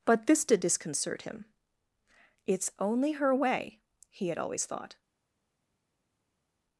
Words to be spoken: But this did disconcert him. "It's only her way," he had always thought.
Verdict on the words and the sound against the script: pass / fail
pass